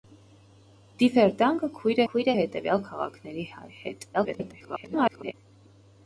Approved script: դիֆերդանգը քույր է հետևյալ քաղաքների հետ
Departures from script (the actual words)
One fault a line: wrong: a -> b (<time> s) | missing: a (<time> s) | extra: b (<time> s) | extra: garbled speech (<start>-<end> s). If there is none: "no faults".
extra: քույր (2.1 s)
extra: garbled speech (4.1-5.3 s)